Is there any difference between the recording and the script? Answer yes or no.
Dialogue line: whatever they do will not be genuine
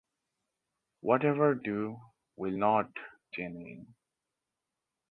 yes